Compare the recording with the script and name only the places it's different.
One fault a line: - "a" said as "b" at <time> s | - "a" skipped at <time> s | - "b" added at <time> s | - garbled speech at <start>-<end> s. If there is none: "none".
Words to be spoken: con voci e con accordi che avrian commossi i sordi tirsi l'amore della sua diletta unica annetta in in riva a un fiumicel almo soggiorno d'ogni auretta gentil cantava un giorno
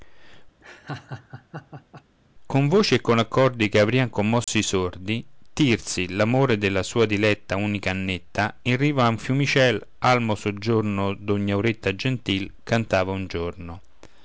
- "in" skipped at 8.7 s